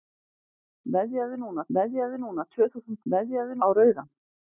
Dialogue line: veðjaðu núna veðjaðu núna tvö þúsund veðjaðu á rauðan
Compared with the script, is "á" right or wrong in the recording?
right